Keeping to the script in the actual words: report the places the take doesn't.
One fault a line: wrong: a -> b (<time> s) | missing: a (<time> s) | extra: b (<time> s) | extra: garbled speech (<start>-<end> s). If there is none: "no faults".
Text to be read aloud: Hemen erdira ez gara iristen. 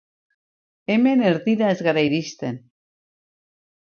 no faults